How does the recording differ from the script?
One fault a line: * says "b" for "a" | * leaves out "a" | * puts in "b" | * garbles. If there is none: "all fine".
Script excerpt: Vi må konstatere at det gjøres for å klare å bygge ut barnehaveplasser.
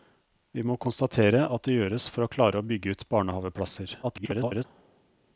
* garbles